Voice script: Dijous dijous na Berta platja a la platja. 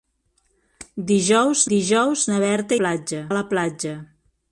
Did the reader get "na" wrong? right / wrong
right